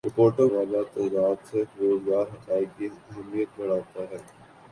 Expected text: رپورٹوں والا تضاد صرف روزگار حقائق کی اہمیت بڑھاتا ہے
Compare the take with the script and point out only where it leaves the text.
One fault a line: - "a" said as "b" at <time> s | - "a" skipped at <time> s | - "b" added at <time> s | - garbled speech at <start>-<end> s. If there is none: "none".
none